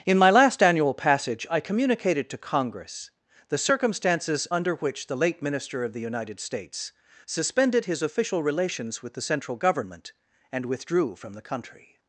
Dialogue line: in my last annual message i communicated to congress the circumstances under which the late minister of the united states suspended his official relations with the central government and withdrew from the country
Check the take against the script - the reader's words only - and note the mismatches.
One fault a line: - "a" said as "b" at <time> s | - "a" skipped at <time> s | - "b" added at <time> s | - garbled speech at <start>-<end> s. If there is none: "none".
- "message" said as "passage" at 0.9 s